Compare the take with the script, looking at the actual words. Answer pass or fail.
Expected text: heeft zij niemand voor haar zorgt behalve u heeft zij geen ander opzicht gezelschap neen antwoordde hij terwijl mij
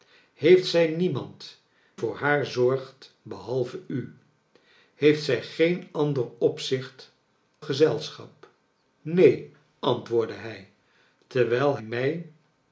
pass